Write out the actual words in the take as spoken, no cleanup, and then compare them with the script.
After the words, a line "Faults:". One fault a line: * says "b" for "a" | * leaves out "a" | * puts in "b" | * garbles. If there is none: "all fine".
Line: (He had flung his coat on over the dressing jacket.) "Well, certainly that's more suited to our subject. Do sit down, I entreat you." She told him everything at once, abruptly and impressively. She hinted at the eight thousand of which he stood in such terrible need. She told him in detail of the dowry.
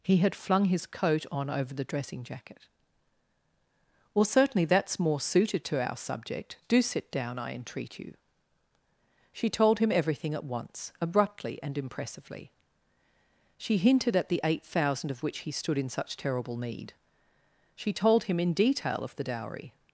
(He had flung his coat on over the dressing jacket.) "Well, certainly that's more suited to our subject. Do sit down, I entreat you." She told him everything at once, abruptly and impressively. She hinted at the eight thousand of which he stood in such terrible need. She told him in detail of the dowry.
Faults:
all fine